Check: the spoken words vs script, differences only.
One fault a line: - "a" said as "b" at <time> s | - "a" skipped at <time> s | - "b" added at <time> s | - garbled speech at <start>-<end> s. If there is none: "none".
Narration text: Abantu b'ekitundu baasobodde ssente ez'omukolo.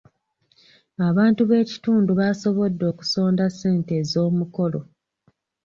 - "okusonda" added at 2.9 s